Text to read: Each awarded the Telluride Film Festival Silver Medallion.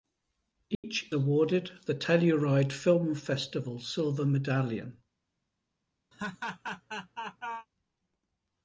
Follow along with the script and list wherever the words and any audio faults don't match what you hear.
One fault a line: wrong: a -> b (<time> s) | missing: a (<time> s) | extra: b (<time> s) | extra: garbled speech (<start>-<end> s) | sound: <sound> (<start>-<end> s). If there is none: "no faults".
sound: dropout (0.7-0.8 s)
sound: laugh (6.1-7.7 s)